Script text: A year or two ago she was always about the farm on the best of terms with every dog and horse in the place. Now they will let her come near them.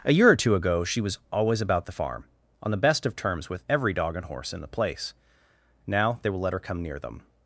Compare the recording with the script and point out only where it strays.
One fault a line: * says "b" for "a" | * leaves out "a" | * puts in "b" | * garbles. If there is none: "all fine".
all fine